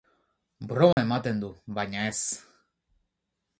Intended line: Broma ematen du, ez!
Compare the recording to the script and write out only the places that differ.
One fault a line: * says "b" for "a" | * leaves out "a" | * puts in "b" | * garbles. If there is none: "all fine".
* puts in "baina"